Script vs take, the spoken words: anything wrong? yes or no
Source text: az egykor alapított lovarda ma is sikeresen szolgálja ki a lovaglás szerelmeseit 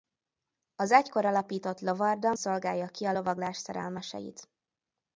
yes